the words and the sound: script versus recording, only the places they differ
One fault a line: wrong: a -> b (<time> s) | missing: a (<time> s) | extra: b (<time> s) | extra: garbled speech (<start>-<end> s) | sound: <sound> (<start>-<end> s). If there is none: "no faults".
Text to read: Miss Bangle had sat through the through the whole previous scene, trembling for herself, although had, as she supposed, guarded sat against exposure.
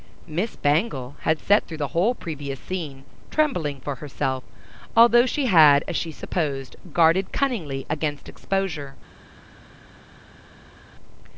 missing: through the (1.9 s)
extra: she (5.3 s)
wrong: sat -> cunningly (7.3 s)